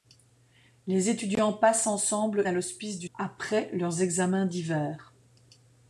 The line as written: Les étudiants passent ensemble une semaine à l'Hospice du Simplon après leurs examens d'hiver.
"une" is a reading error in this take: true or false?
true